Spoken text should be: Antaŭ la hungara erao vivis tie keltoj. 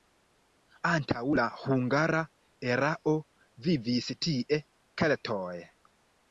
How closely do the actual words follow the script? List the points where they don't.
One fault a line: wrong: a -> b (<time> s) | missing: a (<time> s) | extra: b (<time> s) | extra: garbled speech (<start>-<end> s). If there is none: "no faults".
no faults